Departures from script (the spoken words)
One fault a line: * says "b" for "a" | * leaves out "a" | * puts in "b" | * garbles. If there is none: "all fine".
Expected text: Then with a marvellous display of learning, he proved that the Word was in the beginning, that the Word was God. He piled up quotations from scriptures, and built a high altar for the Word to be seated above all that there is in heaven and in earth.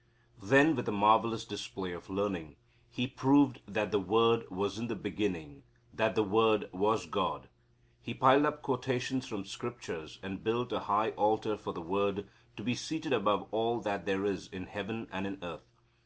all fine